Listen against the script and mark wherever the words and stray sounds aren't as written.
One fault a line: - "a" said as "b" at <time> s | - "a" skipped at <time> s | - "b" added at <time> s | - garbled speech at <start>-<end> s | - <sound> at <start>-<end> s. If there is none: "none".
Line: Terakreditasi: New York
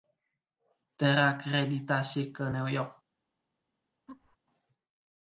- "ke" added at 2.3 s
- laugh at 4.1-4.4 s